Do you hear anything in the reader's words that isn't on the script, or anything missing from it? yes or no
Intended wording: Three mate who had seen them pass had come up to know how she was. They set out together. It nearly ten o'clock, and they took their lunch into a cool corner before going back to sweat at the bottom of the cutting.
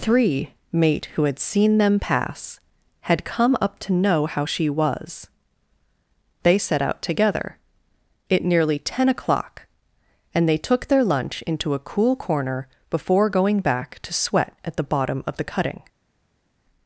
no